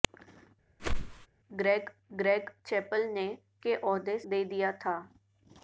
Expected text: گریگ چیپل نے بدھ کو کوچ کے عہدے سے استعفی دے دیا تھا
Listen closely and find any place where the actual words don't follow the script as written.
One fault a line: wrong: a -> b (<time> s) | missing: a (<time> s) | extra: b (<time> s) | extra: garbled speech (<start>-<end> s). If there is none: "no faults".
extra: گریگ (2.1 s)
missing: بدھ کو کوچ (3.3 s)
missing: سے استعفی (4.2 s)